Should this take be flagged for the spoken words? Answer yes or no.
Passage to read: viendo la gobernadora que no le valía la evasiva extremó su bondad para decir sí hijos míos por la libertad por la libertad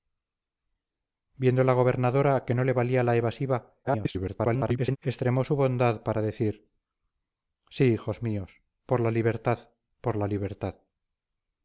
yes